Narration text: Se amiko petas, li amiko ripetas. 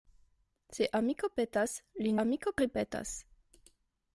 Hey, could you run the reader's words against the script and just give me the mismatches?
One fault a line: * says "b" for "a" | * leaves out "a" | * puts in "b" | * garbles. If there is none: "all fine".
all fine